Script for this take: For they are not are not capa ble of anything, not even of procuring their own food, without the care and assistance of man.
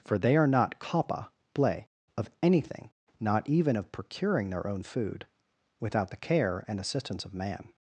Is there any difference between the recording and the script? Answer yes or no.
yes